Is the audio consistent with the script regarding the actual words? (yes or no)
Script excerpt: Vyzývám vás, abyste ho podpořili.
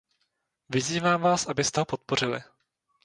yes